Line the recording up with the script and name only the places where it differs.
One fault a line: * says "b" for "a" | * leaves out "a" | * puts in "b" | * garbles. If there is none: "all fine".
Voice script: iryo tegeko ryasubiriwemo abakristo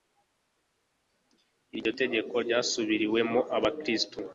all fine